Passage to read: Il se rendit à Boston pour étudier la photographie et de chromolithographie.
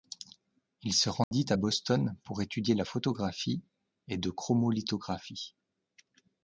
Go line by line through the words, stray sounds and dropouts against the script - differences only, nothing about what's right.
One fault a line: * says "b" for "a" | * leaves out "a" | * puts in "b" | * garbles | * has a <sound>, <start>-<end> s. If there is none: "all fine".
* has a dropout, 1.2-1.3 s